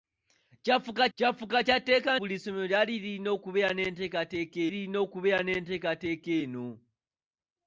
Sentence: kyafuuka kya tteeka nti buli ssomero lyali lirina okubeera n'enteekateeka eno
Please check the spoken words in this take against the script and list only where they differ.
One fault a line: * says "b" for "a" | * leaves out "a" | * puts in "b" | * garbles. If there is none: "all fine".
* puts in "kyafuuka"
* leaves out "nti"
* puts in "lirina okubeera n'enteekateeka"